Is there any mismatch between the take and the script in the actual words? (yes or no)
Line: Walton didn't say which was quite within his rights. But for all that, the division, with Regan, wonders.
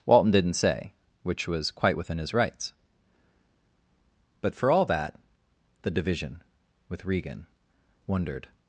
yes